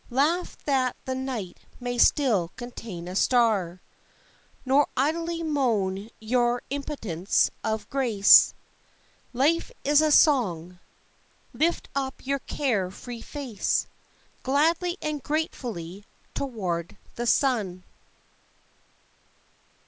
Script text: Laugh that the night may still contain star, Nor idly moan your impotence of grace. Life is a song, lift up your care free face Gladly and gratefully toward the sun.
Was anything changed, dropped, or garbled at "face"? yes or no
no